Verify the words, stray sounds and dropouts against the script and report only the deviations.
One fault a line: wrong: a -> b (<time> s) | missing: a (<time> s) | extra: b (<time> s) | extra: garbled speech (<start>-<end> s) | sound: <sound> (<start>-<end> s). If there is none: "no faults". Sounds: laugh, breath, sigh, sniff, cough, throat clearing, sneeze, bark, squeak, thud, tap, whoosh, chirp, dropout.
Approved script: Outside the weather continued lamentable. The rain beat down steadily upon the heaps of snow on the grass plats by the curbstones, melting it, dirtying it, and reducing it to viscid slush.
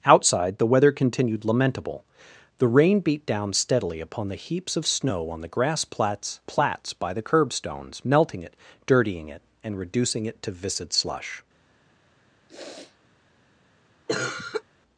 extra: plats (6.5 s)
sound: sniff (12.5-13.0 s)
sound: cough (14.1-14.6 s)